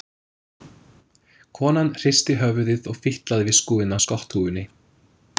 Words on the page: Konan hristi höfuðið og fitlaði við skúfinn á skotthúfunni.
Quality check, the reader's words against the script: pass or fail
pass